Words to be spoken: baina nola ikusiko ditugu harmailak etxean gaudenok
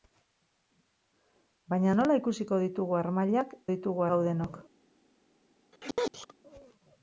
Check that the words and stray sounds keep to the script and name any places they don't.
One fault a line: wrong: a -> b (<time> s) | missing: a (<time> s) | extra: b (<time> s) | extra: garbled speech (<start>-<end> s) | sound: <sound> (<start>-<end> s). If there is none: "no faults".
wrong: etxean -> ditugu (3.7 s)
sound: sneeze (5.7-6.3 s)